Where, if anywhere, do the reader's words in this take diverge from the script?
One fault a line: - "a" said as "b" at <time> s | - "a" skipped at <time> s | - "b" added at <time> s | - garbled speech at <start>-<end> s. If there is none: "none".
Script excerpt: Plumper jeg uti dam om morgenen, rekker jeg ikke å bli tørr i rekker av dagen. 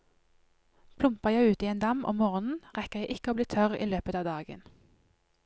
- "en" added at 1.7 s
- "rekker" said as "løpet" at 3.9 s